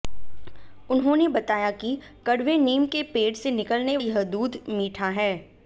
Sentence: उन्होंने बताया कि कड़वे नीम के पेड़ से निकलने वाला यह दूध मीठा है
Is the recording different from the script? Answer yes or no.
yes